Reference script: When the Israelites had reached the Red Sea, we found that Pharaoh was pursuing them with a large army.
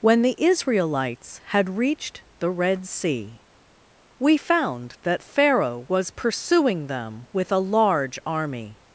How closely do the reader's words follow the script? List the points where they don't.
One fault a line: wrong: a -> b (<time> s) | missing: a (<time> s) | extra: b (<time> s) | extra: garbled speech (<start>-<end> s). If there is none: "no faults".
no faults